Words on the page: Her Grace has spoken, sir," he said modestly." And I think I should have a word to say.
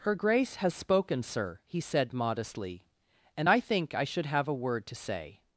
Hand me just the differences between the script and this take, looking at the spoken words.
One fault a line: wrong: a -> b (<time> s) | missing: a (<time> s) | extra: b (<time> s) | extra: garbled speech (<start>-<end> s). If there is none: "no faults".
no faults